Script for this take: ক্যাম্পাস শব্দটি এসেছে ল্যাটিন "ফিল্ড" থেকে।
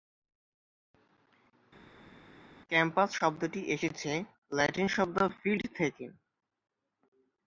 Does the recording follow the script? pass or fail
fail